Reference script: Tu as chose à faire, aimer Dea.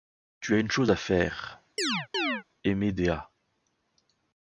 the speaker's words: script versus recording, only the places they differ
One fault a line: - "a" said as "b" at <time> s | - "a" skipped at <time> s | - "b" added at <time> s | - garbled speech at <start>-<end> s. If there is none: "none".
- "une" added at 0.6 s